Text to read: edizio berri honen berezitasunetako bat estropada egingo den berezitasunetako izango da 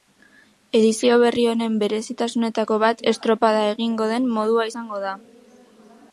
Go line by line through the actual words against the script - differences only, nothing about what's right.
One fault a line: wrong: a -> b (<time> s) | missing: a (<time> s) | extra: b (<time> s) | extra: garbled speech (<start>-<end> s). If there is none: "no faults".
wrong: berezitasunetako -> modua (4.4 s)